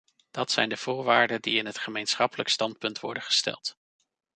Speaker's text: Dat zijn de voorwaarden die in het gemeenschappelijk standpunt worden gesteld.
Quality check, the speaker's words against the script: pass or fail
pass